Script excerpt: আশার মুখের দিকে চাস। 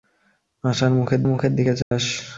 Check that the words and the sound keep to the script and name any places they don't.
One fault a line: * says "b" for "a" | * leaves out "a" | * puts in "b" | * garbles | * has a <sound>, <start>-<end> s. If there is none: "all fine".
* puts in "মুখের"
* has a dropout, 1.8-1.9 s